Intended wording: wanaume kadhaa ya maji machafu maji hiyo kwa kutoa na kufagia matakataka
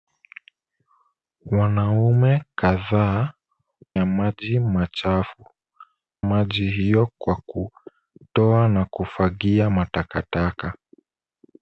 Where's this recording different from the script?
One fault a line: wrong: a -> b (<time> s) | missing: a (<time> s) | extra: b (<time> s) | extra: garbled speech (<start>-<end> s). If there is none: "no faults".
no faults